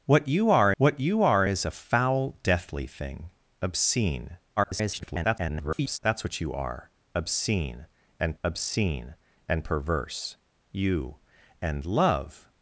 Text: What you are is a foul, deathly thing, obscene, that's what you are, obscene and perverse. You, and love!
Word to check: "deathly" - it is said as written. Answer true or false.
true